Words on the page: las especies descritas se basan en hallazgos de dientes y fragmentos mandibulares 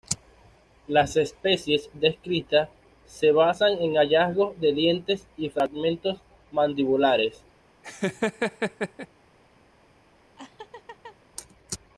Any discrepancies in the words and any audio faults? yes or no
yes